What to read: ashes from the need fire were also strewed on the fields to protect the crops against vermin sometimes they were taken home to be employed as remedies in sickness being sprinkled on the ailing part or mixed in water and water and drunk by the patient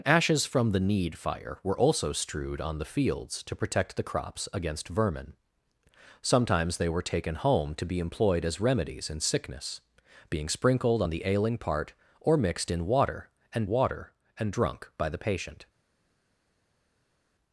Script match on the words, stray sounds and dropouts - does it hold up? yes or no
yes